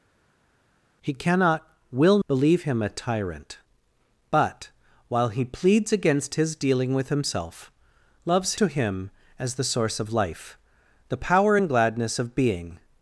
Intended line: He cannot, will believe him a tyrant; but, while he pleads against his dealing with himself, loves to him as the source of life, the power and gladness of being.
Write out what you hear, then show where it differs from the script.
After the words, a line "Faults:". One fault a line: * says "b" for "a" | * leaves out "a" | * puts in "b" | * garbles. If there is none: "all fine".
He cannot, will believe him a tyrant; but, while he pleads against his dealing with himself, loves to him as the source of life, the power and gladness of being.
Faults:
all fine